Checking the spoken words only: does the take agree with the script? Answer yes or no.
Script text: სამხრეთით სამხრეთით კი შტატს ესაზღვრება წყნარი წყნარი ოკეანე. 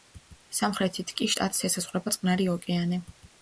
no